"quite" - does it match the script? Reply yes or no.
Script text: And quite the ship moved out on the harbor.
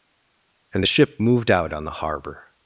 no